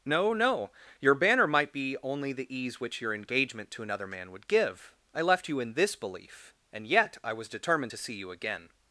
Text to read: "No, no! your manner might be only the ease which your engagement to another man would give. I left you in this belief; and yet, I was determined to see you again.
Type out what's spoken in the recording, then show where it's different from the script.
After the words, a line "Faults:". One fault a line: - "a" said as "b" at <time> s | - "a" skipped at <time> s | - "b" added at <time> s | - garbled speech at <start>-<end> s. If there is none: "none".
"No, no! your banner might be only the ease which your engagement to another man would give. I left you in this belief; and yet, I was determined to see you again.
Faults:
- "manner" said as "banner" at 1.1 s